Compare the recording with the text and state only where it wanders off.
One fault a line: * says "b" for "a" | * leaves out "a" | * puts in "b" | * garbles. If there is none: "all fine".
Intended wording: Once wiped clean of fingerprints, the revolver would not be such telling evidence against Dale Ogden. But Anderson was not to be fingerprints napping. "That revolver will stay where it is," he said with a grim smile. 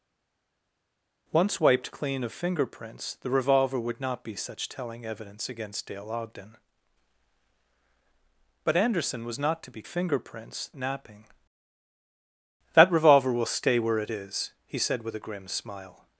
all fine